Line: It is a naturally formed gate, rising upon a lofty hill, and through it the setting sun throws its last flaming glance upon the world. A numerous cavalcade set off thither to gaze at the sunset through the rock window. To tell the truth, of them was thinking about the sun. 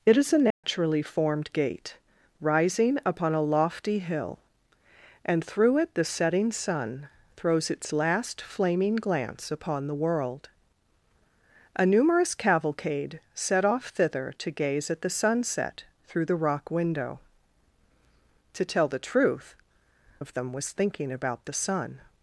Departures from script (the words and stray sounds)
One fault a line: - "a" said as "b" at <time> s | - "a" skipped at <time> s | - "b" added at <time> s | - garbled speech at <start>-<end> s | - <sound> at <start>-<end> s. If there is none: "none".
- dropout at 0.5-0.6 s